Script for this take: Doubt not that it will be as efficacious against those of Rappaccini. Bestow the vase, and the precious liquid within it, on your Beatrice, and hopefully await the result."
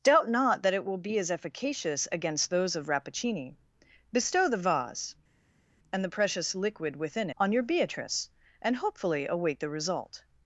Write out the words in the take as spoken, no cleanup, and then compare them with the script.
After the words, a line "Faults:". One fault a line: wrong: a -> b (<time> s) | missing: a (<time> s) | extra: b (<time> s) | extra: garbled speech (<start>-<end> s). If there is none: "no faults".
Doubt not that it will be as efficacious against those of Rappaccini. Bestow the vase, and the precious liquid within on your Beatrice, and hopefully await the result."
Faults:
missing: it (7.3 s)